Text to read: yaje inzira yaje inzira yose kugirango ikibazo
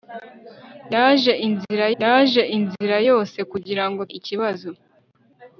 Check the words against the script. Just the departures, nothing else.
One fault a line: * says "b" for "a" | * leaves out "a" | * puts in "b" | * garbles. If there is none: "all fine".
all fine